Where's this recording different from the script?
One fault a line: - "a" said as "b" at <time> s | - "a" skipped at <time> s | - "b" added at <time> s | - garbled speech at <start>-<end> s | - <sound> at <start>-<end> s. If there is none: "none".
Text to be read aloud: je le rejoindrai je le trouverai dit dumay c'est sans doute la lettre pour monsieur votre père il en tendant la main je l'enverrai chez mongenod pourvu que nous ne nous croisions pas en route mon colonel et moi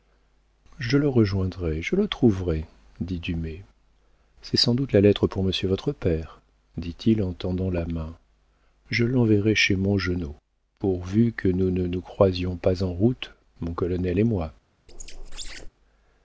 - "dit" added at 6.8 s
- squeak at 14.9-15.7 s